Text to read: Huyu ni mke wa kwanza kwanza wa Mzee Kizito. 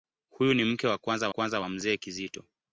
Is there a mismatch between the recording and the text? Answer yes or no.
no